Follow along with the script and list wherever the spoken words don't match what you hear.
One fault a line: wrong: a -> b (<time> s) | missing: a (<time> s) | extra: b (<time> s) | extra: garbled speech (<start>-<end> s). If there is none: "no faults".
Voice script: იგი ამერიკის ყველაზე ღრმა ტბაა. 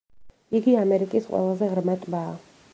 no faults